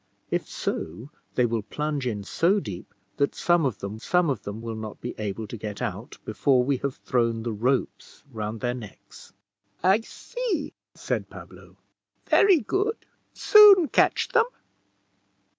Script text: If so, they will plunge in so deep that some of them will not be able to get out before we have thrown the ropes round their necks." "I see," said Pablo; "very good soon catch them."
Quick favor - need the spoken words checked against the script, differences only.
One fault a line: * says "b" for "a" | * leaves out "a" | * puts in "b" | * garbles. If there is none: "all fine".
* puts in "some of them"